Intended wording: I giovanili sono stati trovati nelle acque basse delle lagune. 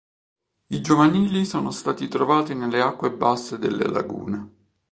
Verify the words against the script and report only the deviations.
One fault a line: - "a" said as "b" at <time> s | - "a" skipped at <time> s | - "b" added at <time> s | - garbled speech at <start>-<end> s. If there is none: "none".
none